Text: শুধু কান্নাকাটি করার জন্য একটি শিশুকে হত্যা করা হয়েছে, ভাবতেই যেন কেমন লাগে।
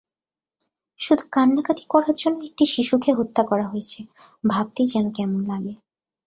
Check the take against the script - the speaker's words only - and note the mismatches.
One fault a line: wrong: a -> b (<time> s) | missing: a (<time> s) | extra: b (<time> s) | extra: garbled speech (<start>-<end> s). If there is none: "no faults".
no faults